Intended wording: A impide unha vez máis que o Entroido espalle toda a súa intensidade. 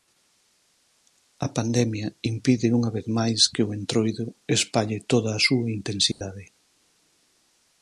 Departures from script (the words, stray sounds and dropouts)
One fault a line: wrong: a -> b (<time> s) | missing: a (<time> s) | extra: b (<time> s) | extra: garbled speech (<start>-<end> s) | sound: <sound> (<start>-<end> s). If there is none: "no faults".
extra: pandemia (1.6 s)
sound: dropout (6.1-6.2 s)